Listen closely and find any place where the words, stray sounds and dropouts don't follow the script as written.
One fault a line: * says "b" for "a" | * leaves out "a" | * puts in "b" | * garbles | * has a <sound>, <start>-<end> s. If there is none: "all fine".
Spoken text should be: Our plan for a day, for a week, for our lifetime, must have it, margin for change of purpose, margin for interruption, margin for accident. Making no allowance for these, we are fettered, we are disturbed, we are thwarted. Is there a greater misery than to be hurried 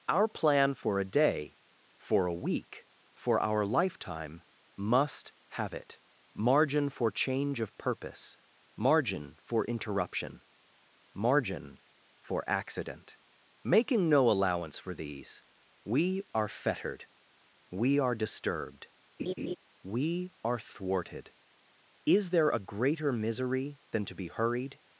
* has a laugh, 19.2-19.6 s